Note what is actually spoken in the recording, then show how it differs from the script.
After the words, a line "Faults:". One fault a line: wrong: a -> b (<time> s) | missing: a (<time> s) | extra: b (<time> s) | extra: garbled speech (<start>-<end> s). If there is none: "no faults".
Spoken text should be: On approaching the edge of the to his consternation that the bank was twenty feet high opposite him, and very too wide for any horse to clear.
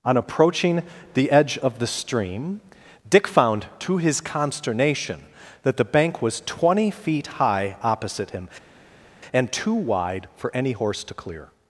On approaching the edge of the stream, Dick found to his consternation that the bank was twenty feet high opposite him, and too wide for any horse to clear.
Faults:
extra: stream Dick found (1.9 s)
missing: very (9.5 s)